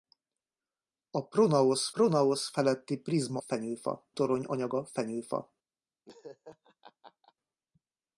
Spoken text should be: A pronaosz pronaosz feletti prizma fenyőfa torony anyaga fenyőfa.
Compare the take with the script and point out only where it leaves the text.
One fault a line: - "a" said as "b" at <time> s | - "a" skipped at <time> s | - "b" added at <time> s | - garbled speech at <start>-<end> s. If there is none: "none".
none